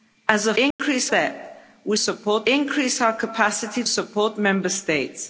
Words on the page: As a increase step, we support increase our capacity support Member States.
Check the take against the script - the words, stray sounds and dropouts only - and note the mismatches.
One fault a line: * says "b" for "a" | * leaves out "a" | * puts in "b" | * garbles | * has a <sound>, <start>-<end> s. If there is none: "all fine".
* has a dropout, 0.7-0.8 s